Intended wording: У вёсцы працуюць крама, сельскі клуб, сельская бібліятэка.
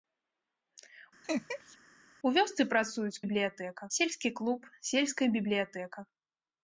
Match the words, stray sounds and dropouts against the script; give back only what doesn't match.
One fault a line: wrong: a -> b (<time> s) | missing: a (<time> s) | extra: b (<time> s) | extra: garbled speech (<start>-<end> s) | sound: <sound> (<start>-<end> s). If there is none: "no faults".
sound: laugh (1.2-1.8 s)
wrong: крама -> бібліятэка (3.2 s)